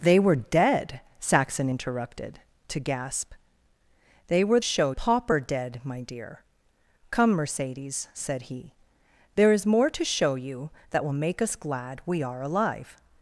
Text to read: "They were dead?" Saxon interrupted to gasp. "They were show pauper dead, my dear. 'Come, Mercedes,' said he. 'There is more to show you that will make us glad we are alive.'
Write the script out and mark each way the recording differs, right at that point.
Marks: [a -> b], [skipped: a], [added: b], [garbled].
"They were dead?" Saxon interrupted to gasp. "They were show pauper dead, my dear. 'Come, Mercedes,' said he. 'There is more to show you that will make us glad we are alive.'